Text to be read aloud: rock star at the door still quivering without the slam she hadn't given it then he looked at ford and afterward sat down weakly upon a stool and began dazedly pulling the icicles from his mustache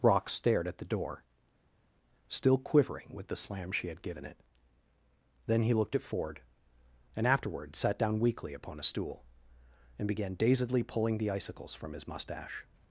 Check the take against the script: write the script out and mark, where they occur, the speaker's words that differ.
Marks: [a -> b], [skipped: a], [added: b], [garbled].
rock [star -> stared] at the door still quivering [without -> with] the slam she [hadn't -> had] given it then he looked at ford and afterward sat down weakly upon a stool and began dazedly pulling the icicles from his mustache